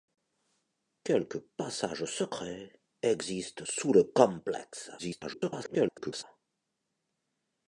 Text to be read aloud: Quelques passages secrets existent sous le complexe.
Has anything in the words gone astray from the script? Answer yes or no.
yes